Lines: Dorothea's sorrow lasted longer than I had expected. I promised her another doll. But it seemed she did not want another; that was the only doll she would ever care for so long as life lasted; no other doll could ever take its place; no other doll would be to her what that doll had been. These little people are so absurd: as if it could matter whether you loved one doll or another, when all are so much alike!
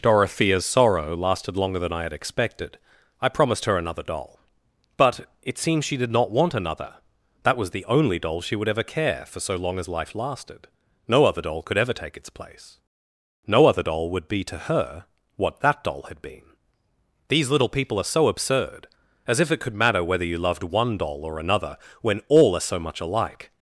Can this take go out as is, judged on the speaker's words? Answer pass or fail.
fail